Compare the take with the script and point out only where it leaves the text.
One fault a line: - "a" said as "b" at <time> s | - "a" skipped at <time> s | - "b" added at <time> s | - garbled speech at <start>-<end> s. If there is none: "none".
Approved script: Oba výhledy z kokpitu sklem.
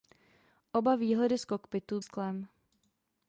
none